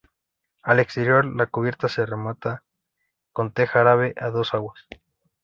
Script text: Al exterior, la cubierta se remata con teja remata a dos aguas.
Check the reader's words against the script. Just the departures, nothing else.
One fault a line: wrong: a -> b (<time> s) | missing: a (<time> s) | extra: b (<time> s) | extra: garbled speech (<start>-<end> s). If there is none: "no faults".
wrong: remata -> árabe (3.8 s)